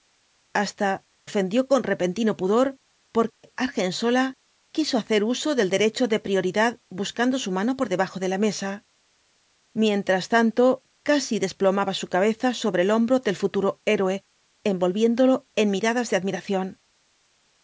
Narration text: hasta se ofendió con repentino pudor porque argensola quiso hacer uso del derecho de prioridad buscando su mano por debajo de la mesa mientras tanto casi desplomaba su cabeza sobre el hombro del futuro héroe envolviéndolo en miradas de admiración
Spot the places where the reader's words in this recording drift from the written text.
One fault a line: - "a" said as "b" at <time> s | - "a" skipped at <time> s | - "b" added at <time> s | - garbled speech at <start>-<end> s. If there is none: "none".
- "se" skipped at 1.0 s